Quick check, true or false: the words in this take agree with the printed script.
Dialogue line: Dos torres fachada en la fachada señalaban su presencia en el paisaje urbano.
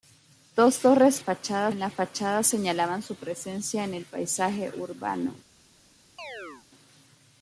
true